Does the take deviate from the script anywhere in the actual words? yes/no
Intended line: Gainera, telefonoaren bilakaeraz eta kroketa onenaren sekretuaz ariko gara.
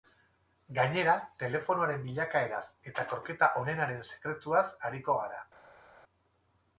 no